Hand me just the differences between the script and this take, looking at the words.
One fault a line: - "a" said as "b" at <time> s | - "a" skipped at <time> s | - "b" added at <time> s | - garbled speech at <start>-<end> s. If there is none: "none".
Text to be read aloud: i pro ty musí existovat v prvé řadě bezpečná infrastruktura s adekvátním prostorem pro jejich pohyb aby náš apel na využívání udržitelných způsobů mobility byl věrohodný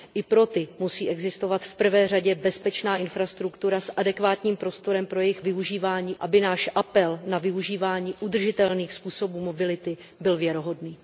- "pohyb" said as "využívání" at 5.4 s